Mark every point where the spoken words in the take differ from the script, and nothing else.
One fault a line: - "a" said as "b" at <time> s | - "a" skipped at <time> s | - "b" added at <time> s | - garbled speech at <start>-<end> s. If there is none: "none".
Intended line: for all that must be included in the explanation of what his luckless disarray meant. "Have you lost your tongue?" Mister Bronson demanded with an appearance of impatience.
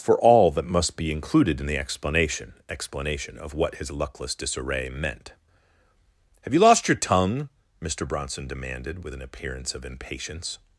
- "explanation" added at 2.7 s